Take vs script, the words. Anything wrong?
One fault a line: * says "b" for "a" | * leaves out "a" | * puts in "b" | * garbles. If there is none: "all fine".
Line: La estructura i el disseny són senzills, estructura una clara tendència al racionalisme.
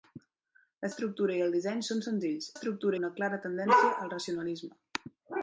all fine